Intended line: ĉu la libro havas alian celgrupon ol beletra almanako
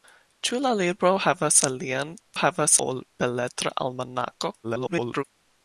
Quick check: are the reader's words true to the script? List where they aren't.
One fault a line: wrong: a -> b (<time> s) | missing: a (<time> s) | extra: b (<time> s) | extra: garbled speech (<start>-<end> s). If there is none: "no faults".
wrong: celgrupon -> havas (2.4 s)
extra: garbled speech (4.6-5.2 s)